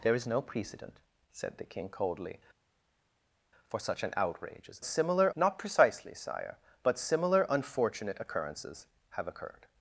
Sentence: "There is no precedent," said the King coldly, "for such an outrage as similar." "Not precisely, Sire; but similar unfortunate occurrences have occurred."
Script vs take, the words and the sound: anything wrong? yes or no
no